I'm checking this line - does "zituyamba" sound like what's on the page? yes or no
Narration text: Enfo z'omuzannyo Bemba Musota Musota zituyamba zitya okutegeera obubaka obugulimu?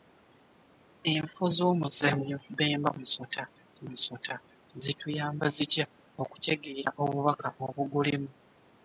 yes